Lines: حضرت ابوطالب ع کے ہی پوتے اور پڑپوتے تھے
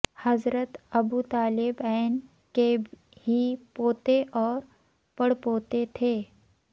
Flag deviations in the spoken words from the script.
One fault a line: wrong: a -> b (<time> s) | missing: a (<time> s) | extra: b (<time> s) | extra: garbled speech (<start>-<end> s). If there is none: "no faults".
no faults